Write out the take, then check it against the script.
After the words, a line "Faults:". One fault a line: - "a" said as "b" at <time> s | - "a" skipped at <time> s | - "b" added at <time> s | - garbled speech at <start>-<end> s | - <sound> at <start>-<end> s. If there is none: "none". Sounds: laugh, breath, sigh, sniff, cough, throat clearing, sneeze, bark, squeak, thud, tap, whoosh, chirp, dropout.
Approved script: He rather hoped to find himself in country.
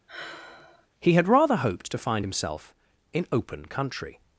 He had rather hoped to find himself in open country.
Faults:
- sigh at 0.1-0.9 s
- "had" added at 1.1 s
- "open" added at 3.3 s